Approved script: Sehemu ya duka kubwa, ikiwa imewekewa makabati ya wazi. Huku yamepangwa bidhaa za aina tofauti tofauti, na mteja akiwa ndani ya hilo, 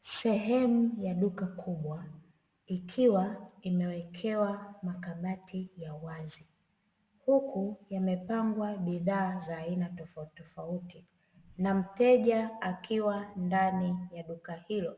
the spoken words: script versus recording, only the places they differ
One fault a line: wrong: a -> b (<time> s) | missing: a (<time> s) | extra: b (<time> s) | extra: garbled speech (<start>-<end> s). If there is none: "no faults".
extra: duka (14.2 s)